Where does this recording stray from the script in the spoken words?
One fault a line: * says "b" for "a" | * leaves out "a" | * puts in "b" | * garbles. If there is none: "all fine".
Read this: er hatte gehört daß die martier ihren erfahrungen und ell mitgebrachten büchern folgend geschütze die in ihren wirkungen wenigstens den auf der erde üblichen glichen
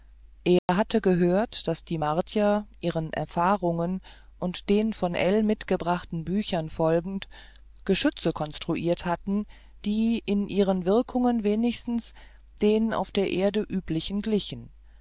* puts in "den von"
* puts in "konstruiert hatten"